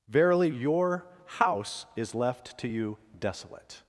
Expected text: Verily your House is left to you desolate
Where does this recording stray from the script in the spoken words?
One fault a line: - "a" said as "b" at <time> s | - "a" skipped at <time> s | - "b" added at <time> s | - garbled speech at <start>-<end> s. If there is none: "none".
none